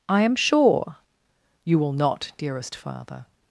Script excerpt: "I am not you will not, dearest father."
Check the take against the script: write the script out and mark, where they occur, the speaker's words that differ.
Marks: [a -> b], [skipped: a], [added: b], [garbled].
"I am [not -> sure] you will not, dearest father."